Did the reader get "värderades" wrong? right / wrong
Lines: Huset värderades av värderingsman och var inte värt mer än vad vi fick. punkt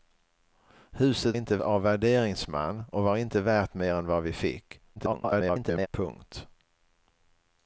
wrong